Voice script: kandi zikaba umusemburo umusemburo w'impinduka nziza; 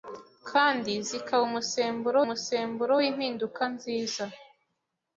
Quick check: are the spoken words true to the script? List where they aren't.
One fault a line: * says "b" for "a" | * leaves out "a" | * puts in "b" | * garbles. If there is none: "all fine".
all fine